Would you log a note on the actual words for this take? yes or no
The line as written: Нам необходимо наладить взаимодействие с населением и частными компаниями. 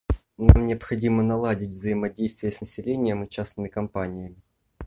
no